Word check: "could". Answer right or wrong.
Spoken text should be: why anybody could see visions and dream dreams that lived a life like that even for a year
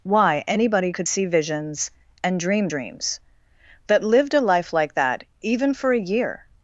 right